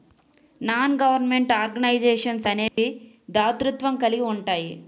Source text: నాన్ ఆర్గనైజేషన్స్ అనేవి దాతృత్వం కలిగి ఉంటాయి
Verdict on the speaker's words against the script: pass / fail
fail